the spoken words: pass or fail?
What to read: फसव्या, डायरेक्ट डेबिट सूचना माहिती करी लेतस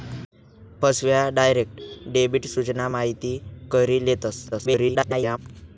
fail